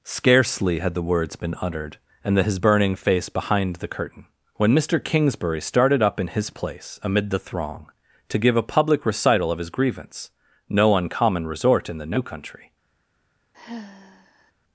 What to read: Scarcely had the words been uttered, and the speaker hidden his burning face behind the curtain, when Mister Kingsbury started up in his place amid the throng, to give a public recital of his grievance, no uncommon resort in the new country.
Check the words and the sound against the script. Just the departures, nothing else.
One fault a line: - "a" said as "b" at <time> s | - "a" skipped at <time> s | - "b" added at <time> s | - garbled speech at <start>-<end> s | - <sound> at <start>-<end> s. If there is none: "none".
- "speaker hidden" skipped at 2.4 s
- sigh at 13.5-14.5 s